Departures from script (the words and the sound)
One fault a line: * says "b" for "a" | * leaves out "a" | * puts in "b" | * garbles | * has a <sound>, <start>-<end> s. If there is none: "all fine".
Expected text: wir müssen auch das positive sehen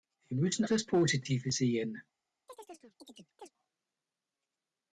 * leaves out "auch"
* has a chirp, 2.5-3.5 s